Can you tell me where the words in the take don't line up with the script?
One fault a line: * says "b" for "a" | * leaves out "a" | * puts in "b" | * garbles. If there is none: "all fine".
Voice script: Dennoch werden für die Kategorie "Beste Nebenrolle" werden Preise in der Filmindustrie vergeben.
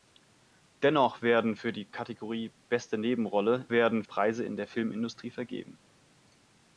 all fine